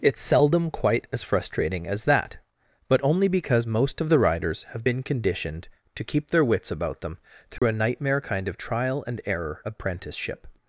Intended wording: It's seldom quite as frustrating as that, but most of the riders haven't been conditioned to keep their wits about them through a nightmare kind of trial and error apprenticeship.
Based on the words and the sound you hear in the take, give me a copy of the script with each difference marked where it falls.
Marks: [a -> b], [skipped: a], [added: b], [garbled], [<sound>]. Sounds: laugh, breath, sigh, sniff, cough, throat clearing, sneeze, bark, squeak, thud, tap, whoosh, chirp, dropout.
It's seldom quite as frustrating as that, but [added: only because] most of the riders [haven't -> have] been conditioned to keep their wits about them through [dropout] a nightmare kind of trial and error apprenticeship.